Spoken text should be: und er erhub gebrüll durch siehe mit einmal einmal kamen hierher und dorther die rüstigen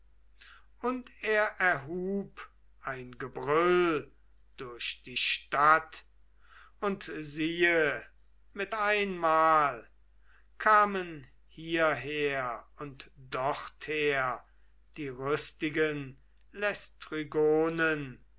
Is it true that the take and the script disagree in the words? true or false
true